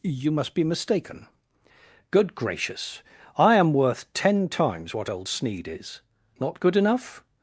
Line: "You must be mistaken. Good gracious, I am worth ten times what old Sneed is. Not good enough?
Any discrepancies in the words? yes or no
no